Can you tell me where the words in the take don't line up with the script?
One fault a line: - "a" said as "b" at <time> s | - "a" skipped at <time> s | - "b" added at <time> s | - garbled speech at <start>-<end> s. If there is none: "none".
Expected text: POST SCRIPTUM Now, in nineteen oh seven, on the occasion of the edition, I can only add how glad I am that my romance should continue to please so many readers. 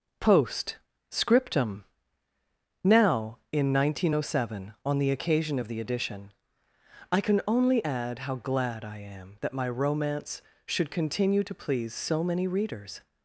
none